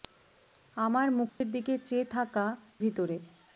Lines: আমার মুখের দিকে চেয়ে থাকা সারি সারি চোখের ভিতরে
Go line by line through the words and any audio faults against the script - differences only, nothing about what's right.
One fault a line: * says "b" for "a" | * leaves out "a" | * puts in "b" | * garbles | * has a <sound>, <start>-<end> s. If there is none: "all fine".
* has a dropout, 1.3-1.4 s
* leaves out "সারি সারি চোখের"